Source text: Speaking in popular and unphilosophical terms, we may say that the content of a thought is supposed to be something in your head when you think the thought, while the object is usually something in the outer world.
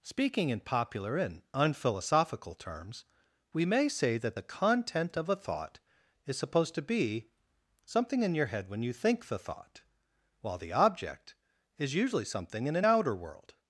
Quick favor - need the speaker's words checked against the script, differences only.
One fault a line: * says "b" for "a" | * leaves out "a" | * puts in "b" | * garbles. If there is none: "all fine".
* says "an" for "the"